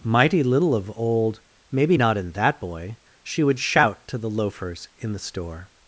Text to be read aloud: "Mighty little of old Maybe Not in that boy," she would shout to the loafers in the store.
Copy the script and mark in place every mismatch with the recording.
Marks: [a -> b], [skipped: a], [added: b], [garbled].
"Mighty little of old Maybe Not in that boy," she would shout to the loafers in the store.